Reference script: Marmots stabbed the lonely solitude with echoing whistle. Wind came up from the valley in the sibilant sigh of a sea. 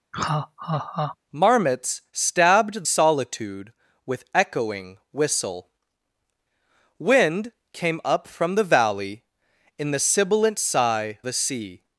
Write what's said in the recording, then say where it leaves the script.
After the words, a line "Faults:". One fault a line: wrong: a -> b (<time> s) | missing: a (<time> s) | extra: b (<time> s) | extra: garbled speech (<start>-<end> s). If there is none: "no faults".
Marmots stabbed solitude with echoing whistle. Wind came up from the valley in the sibilant sigh a sea.
Faults:
missing: the lonely (2.8 s)
missing: of (11.2 s)